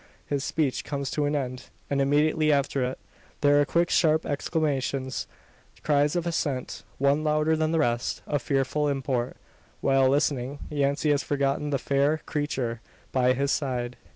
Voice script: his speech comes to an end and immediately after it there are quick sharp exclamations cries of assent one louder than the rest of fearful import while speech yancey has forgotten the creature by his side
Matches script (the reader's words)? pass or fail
fail